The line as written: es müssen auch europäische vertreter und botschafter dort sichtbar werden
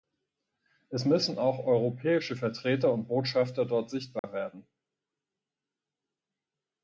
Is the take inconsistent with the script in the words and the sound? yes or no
yes